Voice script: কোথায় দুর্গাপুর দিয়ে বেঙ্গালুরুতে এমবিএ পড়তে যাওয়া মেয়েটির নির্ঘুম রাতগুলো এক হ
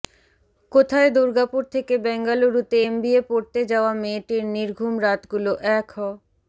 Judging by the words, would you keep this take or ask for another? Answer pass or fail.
fail